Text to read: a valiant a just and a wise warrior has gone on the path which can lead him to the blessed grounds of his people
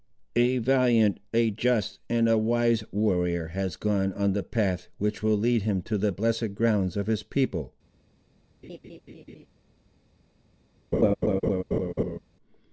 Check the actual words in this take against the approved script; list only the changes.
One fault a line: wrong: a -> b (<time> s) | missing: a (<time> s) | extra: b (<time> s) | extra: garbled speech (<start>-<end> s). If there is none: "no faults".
wrong: can -> will (5.2 s)